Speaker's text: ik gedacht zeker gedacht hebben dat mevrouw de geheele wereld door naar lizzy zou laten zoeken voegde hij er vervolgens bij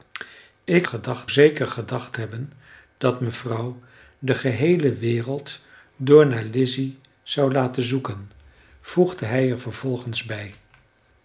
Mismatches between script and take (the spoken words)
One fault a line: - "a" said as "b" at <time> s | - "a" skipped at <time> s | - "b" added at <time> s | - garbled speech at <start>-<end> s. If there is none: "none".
none